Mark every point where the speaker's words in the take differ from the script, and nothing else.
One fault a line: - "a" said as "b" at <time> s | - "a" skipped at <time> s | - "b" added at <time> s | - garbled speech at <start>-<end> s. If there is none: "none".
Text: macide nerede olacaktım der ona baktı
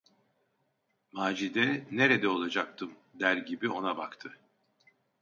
- "gibi" added at 3.4 s